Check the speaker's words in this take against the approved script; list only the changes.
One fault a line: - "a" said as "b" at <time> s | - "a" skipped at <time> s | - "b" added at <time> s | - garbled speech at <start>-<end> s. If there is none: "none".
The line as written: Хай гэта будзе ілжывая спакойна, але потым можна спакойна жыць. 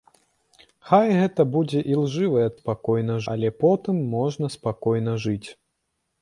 none